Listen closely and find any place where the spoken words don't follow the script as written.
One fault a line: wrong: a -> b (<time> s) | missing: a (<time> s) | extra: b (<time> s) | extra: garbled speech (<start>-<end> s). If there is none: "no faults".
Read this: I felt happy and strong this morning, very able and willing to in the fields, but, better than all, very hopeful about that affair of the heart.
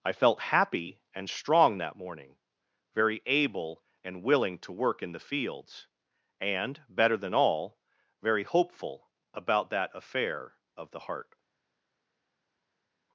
wrong: this -> that (1.8 s)
extra: work (4.7 s)
wrong: but -> and (6.4 s)